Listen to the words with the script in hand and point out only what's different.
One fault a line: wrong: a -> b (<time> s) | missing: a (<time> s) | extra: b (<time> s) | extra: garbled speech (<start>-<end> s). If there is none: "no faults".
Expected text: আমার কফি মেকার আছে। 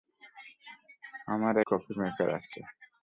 no faults